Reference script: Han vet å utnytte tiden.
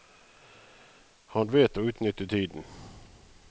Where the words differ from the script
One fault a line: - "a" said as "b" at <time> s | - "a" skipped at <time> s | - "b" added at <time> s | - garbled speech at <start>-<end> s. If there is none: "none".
none